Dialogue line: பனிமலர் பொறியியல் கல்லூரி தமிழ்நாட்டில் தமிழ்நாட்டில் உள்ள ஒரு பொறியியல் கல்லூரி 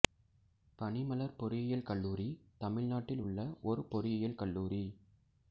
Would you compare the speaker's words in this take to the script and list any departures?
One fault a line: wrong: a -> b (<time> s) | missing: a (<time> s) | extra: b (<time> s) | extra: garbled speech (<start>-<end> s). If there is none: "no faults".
missing: தமிழ்நாட்டில் (3.2 s)